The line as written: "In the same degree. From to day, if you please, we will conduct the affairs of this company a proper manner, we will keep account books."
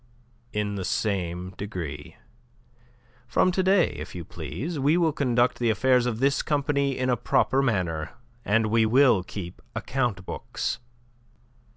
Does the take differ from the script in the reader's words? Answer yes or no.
yes